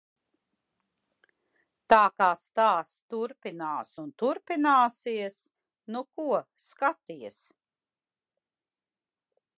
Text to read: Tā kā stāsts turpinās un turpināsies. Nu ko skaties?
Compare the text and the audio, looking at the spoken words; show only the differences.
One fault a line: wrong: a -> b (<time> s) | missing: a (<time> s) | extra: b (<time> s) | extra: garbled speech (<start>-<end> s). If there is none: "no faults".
no faults